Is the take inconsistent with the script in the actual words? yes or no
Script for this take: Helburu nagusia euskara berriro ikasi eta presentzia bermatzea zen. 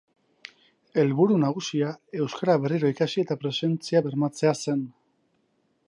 no